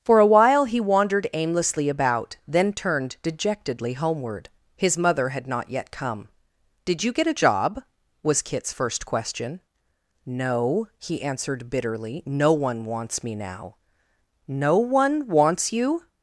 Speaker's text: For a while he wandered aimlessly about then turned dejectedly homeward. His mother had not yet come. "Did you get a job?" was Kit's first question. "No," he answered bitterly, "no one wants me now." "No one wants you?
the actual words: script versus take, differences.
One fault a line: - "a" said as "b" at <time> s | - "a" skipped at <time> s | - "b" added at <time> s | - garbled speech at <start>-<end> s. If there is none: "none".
none